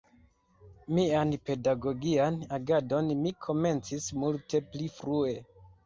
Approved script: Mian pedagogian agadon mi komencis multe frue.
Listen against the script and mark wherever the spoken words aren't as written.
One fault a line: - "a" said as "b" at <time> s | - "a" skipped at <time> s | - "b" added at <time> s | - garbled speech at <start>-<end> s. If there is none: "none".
- "pli" added at 4.7 s